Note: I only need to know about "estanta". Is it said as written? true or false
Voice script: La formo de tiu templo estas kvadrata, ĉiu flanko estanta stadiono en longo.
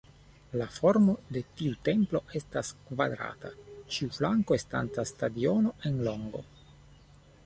true